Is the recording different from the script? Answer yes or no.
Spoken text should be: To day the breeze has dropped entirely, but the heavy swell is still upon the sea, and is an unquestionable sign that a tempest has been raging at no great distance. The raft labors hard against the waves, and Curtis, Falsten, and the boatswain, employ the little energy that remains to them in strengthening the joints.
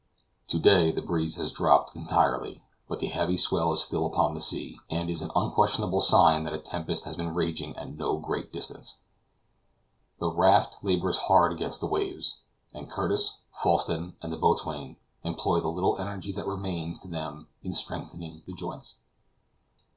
no